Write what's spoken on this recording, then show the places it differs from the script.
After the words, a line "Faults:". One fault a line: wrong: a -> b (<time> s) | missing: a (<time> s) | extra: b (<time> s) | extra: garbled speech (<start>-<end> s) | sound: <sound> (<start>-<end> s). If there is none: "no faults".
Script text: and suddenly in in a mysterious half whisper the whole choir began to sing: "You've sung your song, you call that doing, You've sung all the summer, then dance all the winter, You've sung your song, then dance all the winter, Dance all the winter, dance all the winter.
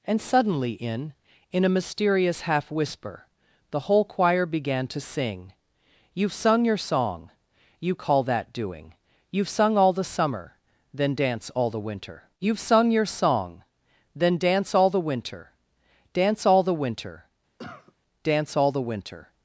and suddenly in in a mysterious half whisper the whole choir began to sing: "You've sung your song, you call that doing, You've sung all the summer, then dance all the winter, You've sung your song, then dance all the winter, Dance all the winter, dance all the winter.
Faults:
sound: cough (17.6-17.9 s)